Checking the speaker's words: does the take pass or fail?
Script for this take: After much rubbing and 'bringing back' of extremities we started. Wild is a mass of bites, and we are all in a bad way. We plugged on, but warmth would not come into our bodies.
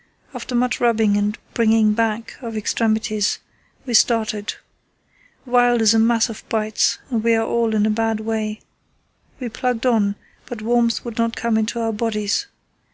pass